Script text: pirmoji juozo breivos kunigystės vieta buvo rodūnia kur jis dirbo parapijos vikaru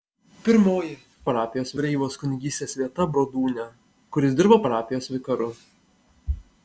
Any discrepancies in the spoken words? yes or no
yes